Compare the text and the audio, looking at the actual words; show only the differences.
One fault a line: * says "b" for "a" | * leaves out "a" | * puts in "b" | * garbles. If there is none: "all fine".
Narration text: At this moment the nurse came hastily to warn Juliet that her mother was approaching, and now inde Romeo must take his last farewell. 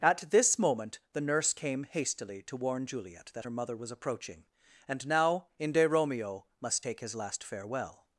all fine